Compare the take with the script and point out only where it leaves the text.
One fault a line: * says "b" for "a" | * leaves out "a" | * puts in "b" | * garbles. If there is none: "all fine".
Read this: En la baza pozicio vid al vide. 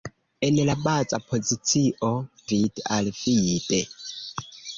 all fine